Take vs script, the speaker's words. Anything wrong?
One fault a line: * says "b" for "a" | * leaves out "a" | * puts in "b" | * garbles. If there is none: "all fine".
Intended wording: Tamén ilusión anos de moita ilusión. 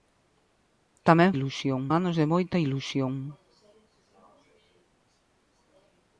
all fine